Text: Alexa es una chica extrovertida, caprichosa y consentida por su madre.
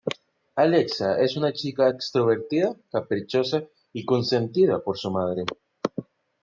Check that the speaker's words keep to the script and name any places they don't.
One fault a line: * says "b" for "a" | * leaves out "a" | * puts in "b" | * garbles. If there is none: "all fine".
all fine